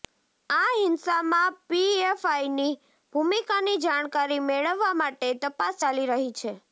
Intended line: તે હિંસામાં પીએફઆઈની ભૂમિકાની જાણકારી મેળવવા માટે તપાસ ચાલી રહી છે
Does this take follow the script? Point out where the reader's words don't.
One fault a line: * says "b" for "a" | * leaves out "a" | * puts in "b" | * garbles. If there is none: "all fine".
* says "આ" for "તે"